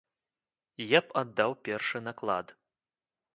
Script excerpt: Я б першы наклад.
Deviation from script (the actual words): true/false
true